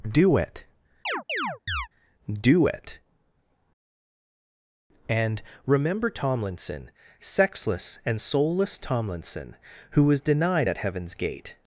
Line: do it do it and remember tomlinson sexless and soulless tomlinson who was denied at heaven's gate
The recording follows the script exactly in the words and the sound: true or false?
false